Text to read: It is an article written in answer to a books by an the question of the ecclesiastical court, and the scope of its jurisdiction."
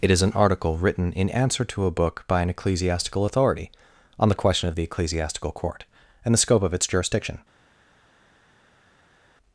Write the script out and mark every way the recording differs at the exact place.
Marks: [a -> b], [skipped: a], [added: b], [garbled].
It is an article written in answer to a [books -> book] by an [added: ecclesiastical authority on] the question of the ecclesiastical court, and the scope of its jurisdiction."